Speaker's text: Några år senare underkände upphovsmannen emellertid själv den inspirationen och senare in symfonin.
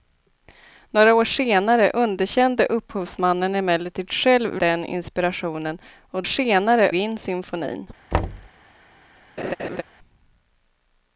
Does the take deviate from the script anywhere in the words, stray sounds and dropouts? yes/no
yes